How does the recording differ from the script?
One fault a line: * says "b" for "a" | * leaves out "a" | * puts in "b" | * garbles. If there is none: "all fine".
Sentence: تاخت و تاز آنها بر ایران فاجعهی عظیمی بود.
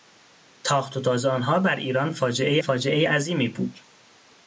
* puts in "فاجعهی"